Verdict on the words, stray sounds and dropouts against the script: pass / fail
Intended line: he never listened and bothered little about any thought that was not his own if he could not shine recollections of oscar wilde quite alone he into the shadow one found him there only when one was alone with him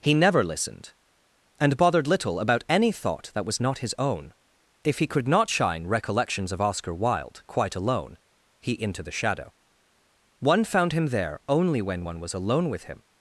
pass